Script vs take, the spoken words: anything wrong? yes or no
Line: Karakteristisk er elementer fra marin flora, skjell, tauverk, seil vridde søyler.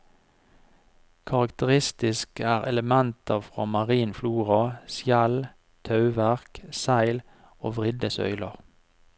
yes